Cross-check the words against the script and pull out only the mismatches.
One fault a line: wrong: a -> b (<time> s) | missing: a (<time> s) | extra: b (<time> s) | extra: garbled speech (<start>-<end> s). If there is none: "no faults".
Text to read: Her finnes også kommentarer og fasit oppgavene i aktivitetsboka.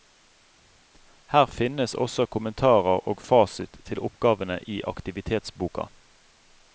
extra: til (3.9 s)